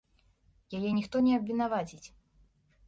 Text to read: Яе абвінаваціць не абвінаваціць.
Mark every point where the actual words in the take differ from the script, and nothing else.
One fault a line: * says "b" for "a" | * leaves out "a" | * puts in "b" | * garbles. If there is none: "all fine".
* says "ніхто" for "абвінаваціць"